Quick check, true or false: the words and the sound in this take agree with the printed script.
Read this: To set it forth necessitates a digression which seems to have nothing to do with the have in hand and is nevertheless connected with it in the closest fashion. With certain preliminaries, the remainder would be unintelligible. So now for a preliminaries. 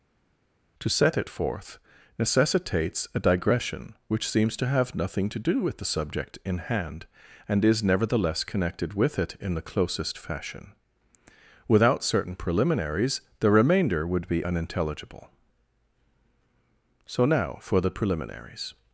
false